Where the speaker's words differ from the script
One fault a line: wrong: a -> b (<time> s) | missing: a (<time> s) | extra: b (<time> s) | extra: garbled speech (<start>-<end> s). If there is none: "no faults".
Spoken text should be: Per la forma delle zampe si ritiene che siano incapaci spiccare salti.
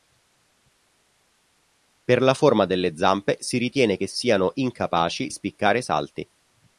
no faults